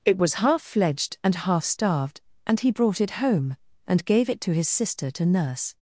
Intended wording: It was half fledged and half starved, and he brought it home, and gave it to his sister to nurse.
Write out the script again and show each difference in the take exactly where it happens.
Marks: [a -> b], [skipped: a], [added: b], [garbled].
It was half fledged and half starved, and he brought it home, and gave it to his sister to nurse.